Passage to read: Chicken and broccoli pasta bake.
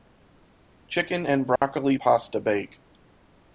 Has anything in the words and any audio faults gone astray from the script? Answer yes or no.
yes